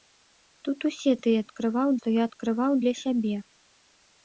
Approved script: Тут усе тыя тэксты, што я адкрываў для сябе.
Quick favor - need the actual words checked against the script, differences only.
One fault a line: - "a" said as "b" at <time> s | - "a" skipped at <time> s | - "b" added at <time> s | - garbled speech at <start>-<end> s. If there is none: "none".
- "тэксты" said as "адкрываў" at 1.5 s